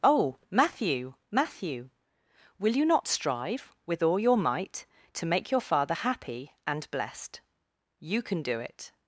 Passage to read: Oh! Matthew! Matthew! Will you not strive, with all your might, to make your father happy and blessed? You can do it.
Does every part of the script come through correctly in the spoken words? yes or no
yes